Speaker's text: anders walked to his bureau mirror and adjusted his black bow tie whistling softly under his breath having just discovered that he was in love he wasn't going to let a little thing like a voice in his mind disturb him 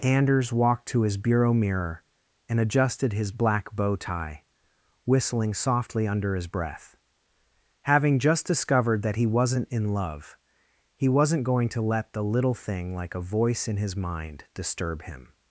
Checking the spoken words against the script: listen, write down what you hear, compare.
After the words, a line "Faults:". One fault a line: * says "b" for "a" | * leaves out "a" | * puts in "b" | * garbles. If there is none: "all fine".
anders walked to his bureau mirror and adjusted his black bow tie whistling softly under his breath having just discovered that he wasn't in love he wasn't going to let the little thing like a voice in his mind disturb him
Faults:
* says "wasn't" for "was"
* says "the" for "a"